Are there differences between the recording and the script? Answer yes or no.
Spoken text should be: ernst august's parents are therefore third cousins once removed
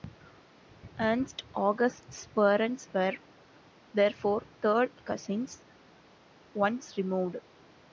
yes